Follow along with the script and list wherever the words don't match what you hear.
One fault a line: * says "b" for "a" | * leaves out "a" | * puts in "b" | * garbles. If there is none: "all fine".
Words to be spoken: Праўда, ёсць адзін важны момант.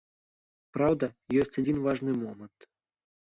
all fine